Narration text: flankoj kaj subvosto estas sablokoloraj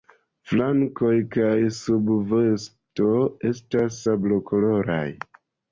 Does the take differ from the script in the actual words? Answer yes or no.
no